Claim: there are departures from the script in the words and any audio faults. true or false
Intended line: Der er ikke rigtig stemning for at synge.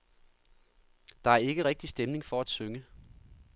false